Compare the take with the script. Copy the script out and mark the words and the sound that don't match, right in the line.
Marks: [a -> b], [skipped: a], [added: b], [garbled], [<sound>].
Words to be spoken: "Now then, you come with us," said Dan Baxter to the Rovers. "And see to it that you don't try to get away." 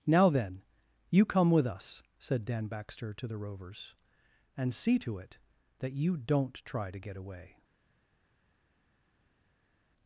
"Now then, you come with us," said Dan Baxter to the Rovers. "And see to it that you don't try to get away."